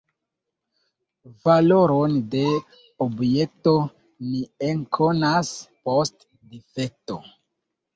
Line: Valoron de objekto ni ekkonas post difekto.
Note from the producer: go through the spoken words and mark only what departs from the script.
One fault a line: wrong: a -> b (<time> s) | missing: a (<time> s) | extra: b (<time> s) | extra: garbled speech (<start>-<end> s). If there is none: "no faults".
no faults